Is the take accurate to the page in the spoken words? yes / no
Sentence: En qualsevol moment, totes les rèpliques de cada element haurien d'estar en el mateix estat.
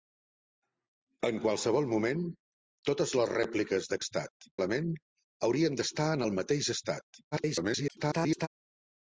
no